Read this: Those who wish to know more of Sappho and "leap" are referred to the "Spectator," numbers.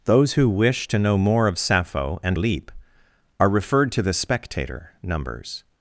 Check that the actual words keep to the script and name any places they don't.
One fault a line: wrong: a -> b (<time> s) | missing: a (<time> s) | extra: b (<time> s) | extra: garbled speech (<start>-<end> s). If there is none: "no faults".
no faults